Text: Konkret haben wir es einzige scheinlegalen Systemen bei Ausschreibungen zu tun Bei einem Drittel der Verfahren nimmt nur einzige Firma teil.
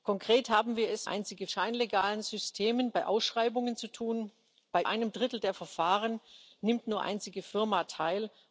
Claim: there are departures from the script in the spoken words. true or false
false